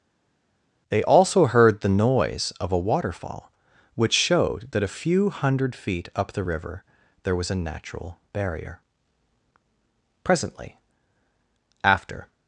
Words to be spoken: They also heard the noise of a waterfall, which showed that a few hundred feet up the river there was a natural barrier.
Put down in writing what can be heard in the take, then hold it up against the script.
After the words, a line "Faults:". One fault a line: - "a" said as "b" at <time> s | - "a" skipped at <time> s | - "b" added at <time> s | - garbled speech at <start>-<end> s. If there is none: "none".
They also heard the noise of a waterfall, which showed that a few hundred feet up the river there was a natural barrier. Presently, after
Faults:
- "Presently after" added at 10.2 s